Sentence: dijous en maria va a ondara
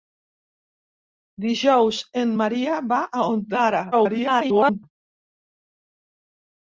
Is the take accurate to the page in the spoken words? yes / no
no